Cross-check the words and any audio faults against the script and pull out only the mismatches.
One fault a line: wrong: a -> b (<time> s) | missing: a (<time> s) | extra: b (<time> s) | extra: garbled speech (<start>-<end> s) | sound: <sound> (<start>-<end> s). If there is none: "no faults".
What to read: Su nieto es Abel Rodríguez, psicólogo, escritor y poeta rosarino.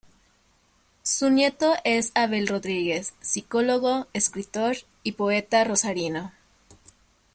no faults